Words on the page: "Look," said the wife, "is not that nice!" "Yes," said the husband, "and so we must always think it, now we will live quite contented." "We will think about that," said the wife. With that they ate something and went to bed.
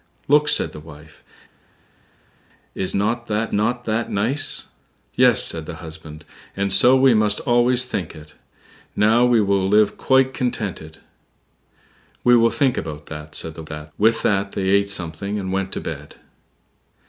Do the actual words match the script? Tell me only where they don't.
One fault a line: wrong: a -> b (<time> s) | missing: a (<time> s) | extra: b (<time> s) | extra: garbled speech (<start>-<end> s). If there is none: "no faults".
extra: not that (3.5 s)
wrong: wife -> that (13.7 s)